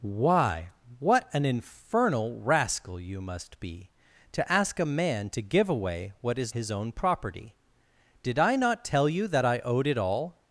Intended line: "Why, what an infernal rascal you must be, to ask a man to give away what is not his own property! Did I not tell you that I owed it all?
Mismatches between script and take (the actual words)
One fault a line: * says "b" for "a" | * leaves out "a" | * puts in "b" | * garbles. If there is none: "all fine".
* leaves out "not"